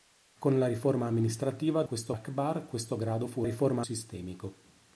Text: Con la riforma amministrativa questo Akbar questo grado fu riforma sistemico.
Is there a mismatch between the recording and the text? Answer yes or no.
no